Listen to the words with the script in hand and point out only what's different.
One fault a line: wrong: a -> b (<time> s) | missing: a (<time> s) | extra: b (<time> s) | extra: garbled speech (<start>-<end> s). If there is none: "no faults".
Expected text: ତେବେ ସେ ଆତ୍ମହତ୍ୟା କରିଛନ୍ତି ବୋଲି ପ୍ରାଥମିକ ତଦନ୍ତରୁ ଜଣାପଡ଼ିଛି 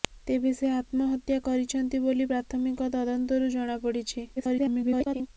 extra: garbled speech (4.4-5.3 s)